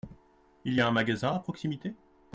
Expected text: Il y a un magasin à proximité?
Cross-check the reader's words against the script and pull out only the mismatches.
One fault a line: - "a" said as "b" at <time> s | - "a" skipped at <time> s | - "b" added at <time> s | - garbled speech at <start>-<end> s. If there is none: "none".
none